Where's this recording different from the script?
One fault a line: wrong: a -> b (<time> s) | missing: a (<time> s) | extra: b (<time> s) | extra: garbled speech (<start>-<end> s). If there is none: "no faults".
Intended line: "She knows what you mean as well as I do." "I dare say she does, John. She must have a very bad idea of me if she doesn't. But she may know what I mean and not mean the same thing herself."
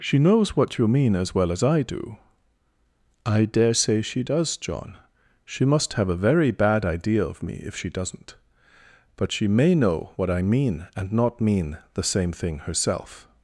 no faults